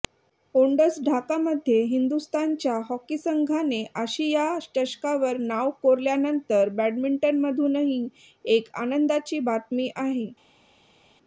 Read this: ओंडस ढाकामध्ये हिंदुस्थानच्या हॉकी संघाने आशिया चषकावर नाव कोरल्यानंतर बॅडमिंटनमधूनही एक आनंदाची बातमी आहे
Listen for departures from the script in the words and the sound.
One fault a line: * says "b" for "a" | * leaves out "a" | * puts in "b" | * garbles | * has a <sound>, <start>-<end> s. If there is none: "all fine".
all fine